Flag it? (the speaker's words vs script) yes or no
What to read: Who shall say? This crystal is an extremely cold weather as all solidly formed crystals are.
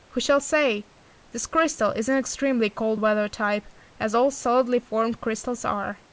yes